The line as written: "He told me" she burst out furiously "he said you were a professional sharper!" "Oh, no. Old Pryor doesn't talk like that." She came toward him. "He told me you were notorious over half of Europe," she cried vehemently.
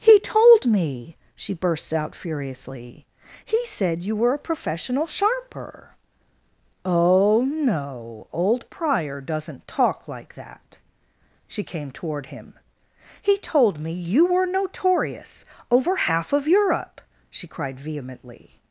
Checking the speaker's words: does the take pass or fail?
fail